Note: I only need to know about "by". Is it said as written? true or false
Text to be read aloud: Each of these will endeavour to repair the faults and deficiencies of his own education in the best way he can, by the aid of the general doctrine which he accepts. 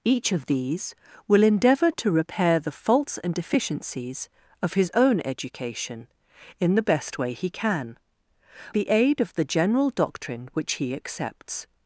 false